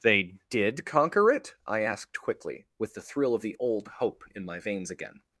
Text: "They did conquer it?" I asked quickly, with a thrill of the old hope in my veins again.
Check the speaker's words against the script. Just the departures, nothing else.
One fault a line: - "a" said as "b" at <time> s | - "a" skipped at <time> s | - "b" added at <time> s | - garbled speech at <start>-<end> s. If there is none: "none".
- "a" said as "the" at 2.9 s